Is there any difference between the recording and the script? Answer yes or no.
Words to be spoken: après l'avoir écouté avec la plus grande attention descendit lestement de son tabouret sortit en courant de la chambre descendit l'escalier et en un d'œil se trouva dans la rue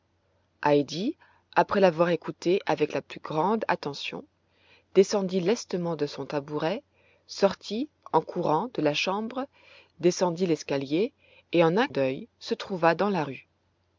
no